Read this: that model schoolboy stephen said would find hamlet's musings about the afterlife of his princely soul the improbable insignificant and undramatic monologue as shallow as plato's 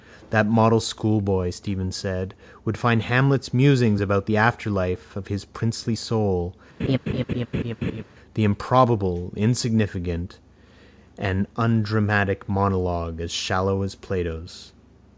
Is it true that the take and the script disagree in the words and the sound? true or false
true